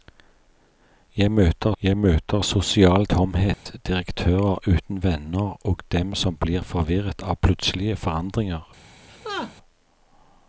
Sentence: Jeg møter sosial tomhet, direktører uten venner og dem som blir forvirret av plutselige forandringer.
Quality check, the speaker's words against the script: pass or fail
fail